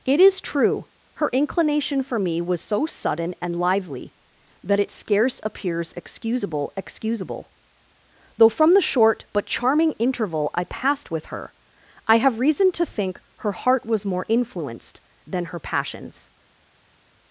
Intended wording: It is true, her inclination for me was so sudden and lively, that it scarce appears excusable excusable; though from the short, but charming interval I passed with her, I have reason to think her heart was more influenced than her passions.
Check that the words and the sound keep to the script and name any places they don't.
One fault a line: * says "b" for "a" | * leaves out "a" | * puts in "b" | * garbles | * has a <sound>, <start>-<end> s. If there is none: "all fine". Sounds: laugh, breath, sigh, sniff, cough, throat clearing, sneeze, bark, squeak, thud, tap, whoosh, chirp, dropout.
all fine